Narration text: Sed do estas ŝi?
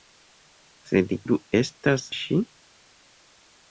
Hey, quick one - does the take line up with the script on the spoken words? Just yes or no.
yes